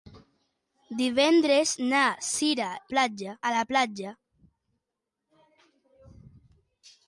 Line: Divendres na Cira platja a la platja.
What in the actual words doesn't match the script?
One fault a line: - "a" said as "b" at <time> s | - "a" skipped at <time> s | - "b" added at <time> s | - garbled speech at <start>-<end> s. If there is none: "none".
none